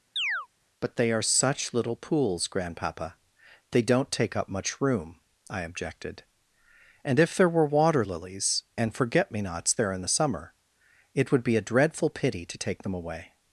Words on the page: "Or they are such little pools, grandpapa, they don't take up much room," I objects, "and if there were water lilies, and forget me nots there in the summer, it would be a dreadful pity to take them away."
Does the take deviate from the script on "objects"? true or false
true